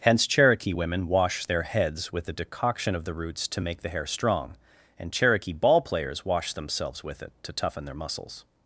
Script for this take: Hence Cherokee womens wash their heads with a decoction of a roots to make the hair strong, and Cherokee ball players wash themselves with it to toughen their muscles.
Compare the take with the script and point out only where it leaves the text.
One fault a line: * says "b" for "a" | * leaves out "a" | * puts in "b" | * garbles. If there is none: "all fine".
* says "women" for "womens"
* says "the" for "a"